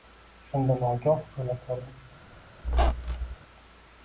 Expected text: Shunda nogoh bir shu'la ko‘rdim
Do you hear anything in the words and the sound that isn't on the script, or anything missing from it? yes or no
yes